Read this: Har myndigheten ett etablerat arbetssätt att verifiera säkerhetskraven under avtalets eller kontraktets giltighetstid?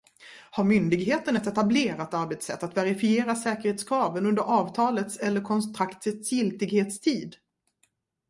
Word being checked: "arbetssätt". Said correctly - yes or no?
yes